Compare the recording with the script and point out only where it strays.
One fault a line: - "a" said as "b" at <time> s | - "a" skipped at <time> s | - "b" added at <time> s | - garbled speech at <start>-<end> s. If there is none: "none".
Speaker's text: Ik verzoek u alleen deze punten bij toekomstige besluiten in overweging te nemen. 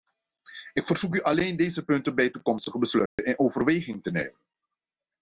none